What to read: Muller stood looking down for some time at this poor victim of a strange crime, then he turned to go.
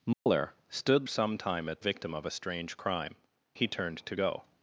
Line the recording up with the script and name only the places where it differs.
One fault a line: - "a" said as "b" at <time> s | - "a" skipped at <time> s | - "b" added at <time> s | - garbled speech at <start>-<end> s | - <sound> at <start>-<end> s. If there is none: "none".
- dropout at 0.1-0.3 s
- "looking down for" skipped at 1.1 s
- "this poor" skipped at 1.8 s
- "then" skipped at 3.2 s